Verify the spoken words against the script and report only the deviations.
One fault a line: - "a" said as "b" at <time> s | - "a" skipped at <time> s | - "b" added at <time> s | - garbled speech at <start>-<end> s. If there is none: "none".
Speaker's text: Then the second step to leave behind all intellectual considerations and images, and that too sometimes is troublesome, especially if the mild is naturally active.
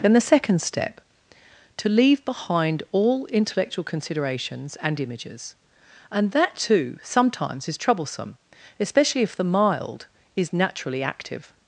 none